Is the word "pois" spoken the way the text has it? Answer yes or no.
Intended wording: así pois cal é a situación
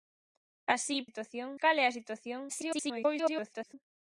no